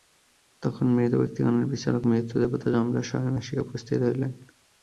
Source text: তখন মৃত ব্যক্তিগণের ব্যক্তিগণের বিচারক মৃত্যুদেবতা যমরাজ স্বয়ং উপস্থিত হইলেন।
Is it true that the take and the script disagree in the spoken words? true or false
true